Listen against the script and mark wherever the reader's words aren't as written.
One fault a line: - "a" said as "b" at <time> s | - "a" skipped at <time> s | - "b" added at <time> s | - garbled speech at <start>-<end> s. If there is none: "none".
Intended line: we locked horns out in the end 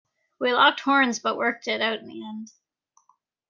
- "but worked it" added at 1.2 s